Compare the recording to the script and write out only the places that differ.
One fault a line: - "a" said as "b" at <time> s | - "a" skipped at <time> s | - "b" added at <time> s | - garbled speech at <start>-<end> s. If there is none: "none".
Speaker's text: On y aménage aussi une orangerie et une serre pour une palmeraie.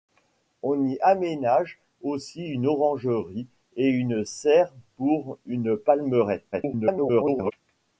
- garbled speech at 6.5-7.5 s